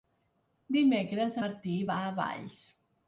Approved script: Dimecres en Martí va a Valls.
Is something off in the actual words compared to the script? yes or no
yes